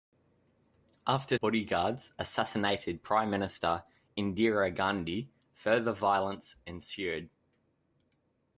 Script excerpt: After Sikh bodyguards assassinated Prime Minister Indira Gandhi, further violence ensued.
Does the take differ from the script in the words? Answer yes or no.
yes